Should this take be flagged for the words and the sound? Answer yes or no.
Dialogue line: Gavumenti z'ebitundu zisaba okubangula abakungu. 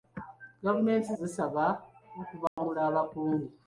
yes